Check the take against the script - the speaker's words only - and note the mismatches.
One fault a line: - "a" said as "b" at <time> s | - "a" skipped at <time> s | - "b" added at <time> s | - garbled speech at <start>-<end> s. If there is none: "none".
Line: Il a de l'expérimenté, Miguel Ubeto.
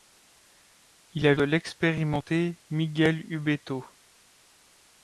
none